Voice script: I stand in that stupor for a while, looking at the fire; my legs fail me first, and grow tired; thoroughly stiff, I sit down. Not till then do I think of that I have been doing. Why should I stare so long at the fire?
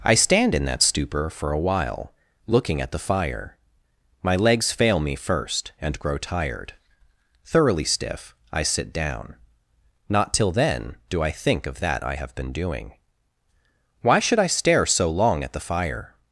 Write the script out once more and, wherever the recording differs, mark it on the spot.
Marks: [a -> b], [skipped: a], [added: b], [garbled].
I stand in that stupor for a while, looking at the fire; my legs fail me first, and grow tired; thoroughly stiff, I sit down. Not till then do I think of that I have been doing. Why should I stare so long at the fire?